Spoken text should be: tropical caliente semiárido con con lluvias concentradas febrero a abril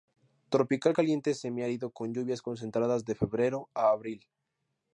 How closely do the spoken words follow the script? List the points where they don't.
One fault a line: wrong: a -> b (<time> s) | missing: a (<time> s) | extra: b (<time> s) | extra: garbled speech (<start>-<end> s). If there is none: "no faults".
missing: con (2.1 s)
extra: de (3.0 s)